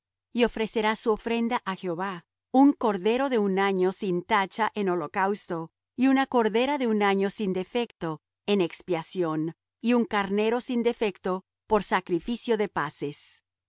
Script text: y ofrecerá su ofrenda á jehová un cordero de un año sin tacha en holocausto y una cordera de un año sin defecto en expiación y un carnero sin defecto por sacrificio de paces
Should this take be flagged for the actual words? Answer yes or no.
no